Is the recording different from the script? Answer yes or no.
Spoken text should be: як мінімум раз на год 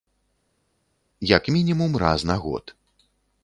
no